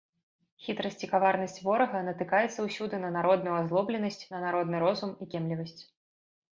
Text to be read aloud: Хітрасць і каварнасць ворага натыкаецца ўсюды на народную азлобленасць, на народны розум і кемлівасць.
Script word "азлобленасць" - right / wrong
right